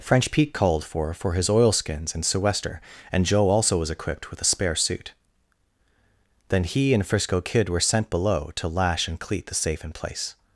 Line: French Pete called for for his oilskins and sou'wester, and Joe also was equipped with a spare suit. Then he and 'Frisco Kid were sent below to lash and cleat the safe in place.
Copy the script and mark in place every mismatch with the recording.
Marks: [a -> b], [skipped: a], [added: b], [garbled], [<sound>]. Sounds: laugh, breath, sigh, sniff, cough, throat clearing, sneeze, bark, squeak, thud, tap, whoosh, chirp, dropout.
French Pete called for for his oilskins and sou'wester, and Joe also was equipped with a spare suit. Then he and 'Frisco Kid were sent below to lash and cleat the safe in place.